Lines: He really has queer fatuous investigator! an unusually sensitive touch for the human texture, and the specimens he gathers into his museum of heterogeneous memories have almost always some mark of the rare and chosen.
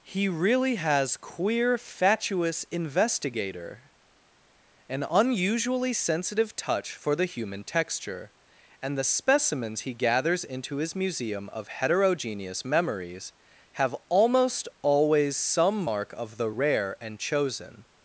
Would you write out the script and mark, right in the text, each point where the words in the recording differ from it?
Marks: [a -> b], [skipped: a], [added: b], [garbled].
He really has queer fatuous investigator! an unusually sensitive touch for the human texture, and the specimens he gathers into his museum of heterogeneous memories have almost always some mark of the rare and chosen.